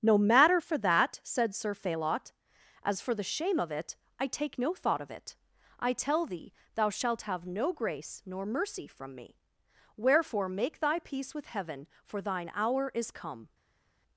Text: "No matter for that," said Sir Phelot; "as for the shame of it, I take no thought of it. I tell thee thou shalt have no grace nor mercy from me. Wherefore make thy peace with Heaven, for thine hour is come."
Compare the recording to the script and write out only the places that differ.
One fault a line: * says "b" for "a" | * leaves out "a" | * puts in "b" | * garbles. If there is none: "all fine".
all fine